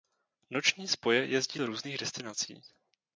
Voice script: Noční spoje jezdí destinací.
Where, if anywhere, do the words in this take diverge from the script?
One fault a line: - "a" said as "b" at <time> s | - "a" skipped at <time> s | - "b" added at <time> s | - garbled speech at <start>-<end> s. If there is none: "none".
- "do různých" added at 1.5 s